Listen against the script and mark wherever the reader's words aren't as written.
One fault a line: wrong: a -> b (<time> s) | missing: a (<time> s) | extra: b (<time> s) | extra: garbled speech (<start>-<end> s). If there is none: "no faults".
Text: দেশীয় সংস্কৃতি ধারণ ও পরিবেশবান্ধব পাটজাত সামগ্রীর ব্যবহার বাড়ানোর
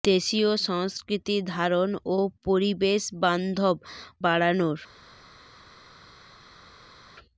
missing: পাটজাত সামগ্রীর ব্যবহার (3.8 s)